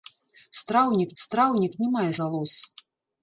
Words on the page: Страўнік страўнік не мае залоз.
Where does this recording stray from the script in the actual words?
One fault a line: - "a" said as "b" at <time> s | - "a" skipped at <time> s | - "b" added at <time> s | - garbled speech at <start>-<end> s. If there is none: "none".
none